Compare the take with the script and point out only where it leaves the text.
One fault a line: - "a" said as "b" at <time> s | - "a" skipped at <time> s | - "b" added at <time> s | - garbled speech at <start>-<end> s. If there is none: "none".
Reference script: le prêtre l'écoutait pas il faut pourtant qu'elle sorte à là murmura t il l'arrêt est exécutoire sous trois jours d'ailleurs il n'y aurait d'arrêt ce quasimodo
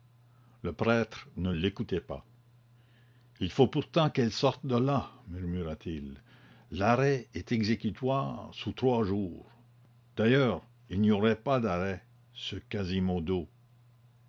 - "ne" added at 1.4 s
- "à" said as "de" at 4.7 s
- "pas" added at 11.4 s